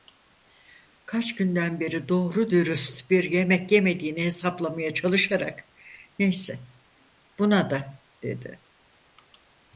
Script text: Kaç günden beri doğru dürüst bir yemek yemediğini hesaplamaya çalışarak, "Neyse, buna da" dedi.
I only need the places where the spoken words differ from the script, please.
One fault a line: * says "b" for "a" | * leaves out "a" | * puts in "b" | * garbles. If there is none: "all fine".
all fine